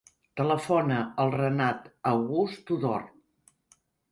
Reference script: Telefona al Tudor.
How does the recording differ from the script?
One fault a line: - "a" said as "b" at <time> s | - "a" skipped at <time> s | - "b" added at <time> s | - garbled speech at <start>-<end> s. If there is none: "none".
- "Renat August" added at 1.3 s